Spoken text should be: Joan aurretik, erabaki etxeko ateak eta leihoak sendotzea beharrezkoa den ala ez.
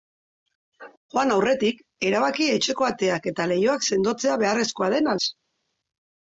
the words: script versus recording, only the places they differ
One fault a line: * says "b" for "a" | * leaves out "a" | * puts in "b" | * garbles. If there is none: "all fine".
* leaves out "ala"